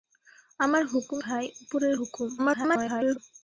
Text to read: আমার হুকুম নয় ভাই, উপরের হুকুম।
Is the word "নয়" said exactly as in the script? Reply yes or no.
no